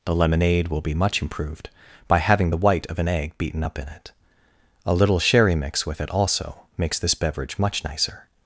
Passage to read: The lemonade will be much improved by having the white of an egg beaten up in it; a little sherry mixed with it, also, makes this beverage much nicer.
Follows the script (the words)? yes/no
no